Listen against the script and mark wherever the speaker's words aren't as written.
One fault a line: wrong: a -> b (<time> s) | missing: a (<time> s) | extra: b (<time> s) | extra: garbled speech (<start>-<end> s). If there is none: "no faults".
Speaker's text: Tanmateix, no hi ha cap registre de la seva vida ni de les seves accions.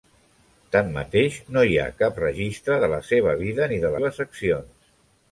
missing: les (3.9 s)